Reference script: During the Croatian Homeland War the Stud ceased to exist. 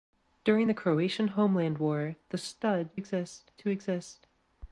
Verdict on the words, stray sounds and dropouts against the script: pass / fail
fail